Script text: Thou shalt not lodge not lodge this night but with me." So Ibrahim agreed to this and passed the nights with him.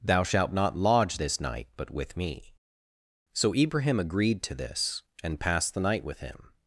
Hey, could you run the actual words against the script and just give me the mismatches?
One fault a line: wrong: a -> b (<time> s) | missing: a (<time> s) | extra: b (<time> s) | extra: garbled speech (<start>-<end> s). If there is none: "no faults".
missing: not lodge (1.2 s)
wrong: nights -> night (5.8 s)